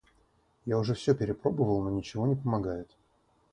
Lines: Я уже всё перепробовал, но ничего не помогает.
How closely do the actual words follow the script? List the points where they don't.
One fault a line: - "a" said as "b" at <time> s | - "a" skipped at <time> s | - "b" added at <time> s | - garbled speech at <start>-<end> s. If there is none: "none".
none